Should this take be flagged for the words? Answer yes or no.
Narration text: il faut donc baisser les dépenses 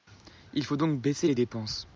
no